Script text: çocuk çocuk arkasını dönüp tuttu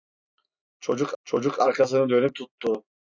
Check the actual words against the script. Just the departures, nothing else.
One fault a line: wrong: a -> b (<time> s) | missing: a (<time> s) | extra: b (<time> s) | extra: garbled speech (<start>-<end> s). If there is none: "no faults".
no faults